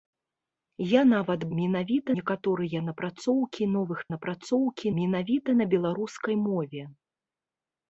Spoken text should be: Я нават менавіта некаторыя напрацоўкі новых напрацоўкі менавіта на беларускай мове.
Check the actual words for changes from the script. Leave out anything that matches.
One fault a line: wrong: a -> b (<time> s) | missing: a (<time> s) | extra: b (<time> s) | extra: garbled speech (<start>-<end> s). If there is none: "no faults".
no faults